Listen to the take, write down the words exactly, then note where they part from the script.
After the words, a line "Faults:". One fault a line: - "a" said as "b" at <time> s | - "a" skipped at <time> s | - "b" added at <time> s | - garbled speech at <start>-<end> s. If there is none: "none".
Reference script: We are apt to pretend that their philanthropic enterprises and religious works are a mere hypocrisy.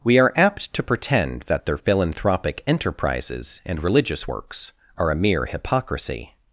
We are apt to pretend that their philanthropic enterprises and religious works are a mere hypocrisy.
Faults:
none